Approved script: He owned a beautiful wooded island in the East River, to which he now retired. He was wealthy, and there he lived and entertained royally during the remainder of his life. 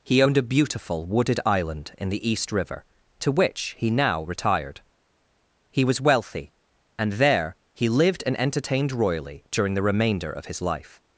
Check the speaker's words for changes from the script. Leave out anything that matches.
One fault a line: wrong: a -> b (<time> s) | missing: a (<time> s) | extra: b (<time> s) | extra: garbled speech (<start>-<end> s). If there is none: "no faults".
no faults